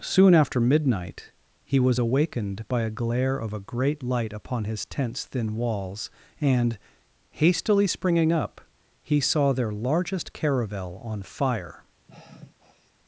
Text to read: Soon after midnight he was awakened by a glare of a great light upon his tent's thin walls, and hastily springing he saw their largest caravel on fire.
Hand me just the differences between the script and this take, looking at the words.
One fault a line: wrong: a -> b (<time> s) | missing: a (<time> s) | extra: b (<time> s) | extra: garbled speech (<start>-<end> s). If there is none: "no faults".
extra: up (8.3 s)